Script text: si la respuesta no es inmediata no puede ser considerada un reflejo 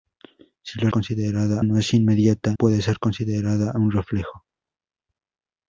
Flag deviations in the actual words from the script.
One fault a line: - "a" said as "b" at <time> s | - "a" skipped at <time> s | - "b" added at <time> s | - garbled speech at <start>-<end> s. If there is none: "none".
- "respuesta" said as "considerada" at 0.9 s
- "no" skipped at 2.5 s